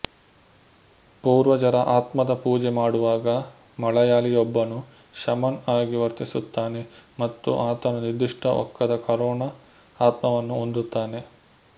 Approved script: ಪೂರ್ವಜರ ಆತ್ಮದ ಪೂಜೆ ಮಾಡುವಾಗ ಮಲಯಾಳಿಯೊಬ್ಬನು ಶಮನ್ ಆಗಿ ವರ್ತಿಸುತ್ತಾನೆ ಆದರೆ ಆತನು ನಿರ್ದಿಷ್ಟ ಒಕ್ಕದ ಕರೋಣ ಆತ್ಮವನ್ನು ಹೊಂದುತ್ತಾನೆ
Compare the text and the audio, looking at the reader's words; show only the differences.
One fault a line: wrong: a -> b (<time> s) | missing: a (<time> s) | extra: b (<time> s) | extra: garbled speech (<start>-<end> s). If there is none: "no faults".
wrong: ಆದರೆ -> ಮತ್ತು (7.2 s)